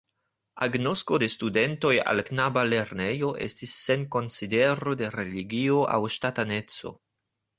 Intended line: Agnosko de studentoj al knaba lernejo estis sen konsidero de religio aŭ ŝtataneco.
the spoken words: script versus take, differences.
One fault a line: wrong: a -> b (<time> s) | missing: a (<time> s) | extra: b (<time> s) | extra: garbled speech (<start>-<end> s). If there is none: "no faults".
no faults